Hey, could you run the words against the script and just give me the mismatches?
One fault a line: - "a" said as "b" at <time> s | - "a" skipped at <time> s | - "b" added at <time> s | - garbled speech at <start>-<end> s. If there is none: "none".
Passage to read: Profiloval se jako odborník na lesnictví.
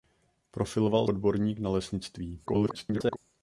- "se jako" skipped at 1.1 s
- garbled speech at 2.5-3.2 s